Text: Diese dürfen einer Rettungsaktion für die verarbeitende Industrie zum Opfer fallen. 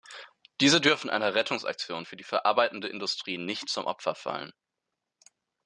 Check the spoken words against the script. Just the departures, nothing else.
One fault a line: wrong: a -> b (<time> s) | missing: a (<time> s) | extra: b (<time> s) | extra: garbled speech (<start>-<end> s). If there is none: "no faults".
extra: nicht (3.4 s)